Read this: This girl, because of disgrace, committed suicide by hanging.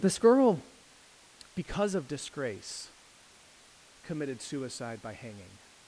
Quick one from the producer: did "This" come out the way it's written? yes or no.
yes